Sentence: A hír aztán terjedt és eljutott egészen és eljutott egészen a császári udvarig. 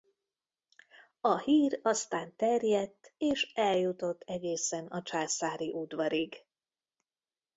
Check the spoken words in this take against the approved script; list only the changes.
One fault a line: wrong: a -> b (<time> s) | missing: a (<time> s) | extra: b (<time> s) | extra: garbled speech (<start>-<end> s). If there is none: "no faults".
missing: és eljutott egészen (4.9 s)